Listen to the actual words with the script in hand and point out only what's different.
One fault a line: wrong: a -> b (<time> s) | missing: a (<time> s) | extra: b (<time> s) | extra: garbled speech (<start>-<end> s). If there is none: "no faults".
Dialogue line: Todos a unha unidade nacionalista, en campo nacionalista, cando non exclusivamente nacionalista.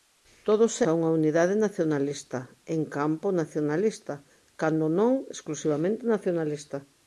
no faults